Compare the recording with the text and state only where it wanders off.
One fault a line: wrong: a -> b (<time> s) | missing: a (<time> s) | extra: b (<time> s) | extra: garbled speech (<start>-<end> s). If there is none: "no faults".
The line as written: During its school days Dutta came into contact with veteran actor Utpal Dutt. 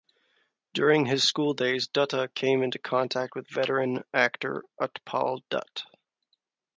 wrong: its -> his (1.1 s)